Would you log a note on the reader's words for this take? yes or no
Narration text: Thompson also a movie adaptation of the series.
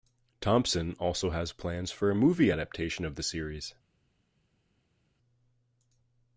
yes